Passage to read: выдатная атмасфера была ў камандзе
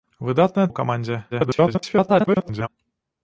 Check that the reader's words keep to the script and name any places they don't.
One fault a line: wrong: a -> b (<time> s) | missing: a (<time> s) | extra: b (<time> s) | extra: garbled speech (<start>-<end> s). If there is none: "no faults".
missing: атмасфера была (0.7 s)
extra: garbled speech (1.3-2.7 s)